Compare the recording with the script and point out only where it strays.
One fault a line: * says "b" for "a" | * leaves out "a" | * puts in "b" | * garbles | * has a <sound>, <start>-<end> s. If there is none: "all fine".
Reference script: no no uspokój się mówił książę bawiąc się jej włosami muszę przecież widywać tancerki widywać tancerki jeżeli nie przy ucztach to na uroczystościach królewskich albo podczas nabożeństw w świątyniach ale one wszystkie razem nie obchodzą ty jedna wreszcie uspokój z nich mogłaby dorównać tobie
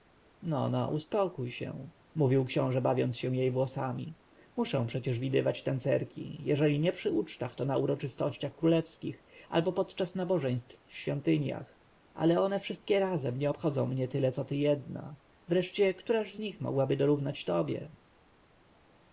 * leaves out "widywać tancerki"
* puts in "mnie tyle co"
* says "któraż" for "uspokój"